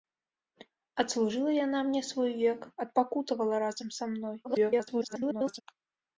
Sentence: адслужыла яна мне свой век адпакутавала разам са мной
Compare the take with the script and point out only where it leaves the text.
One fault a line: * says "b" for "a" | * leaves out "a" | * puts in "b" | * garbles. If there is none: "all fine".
* garbles